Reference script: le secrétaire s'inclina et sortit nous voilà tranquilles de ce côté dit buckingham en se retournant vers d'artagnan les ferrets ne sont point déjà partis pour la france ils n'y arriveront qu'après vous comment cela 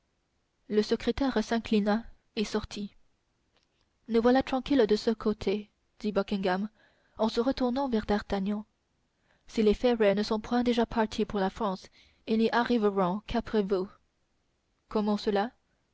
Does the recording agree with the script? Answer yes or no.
no